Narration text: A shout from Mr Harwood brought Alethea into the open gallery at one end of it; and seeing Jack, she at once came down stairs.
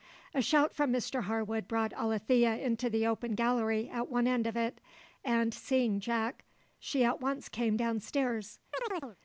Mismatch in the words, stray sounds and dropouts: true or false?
true